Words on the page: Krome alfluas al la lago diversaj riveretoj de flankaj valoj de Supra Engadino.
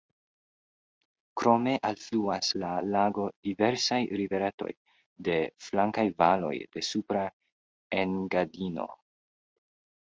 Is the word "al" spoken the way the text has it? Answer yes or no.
no